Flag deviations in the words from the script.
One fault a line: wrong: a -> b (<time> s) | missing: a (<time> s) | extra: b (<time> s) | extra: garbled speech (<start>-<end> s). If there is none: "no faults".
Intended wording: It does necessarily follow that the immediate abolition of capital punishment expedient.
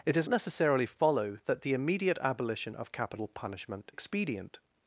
no faults